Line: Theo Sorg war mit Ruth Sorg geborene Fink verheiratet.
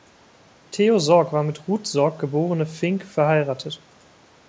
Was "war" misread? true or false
false